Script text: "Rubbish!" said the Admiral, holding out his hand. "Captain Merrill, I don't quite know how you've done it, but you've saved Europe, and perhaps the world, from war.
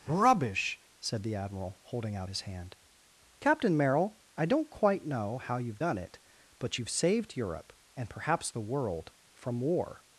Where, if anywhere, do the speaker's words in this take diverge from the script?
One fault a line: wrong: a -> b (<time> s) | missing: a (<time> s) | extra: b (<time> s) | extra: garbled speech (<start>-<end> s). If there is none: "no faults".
no faults